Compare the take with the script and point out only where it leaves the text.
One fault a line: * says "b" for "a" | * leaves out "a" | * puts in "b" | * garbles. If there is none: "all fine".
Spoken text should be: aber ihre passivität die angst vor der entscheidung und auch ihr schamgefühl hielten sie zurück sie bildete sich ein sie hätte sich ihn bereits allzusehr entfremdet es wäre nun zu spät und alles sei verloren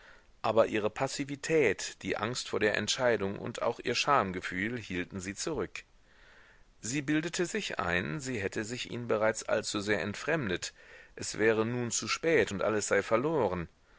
all fine